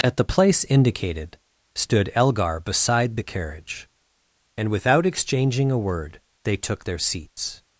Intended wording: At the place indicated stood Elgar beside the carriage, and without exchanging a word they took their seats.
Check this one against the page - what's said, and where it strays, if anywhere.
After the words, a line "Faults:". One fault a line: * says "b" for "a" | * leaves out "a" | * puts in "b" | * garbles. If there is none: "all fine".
At the place indicated stood Elgar beside the carriage, and without exchanging a word they took their seats.
Faults:
all fine